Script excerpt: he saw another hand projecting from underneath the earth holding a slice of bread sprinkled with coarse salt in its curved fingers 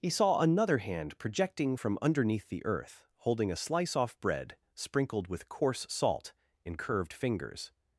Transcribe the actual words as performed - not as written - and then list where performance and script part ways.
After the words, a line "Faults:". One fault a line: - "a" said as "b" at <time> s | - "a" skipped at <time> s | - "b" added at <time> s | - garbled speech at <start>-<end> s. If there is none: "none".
he saw another hand projecting from underneath the earth holding a slice off bread sprinkled with coarse salt in curved fingers
Faults:
- "of" said as "off" at 4.0 s
- "its" skipped at 6.8 s